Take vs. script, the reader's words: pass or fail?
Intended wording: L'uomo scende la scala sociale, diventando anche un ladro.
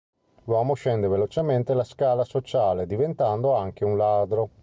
fail